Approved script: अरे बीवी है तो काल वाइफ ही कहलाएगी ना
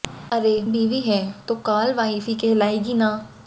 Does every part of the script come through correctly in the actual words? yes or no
yes